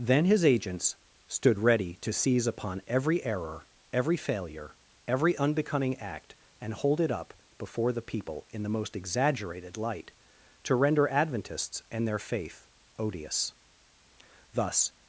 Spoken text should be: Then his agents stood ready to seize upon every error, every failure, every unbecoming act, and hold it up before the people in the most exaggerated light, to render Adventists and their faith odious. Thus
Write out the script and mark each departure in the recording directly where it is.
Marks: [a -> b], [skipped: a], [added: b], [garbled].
Then his agents stood ready to seize upon every error, every failure, every unbecoming act, and hold it up before the people in the most exaggerated light, to render Adventists and their faith odious. Thus